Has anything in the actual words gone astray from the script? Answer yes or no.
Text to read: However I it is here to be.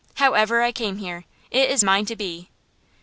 yes